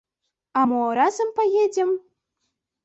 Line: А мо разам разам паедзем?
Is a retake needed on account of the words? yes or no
yes